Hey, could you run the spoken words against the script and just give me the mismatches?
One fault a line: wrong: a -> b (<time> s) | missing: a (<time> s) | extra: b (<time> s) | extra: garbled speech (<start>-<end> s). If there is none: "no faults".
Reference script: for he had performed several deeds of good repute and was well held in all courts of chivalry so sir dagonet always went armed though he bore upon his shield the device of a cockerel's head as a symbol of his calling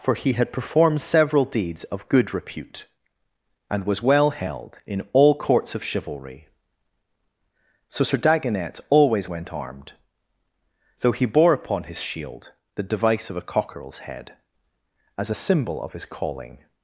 no faults